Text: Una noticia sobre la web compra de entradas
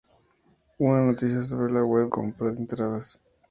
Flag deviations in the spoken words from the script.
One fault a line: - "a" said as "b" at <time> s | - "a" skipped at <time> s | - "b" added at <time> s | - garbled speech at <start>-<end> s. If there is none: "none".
none